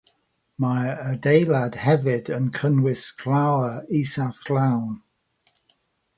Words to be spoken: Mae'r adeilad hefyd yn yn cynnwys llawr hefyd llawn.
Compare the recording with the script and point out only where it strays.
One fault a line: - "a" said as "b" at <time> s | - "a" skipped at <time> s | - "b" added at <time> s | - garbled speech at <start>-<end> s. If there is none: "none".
- "yn" skipped at 2.5 s
- "hefyd" said as "isaf" at 4.0 s